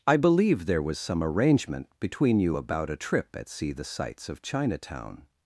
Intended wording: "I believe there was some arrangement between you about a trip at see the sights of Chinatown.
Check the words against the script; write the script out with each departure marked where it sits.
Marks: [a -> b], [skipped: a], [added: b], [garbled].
"I believe there was some arrangement between you about a trip at see the sights of Chinatown.